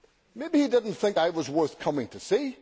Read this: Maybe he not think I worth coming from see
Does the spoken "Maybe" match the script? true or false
true